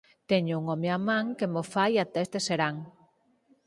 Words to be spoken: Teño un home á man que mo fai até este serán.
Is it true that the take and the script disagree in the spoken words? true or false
false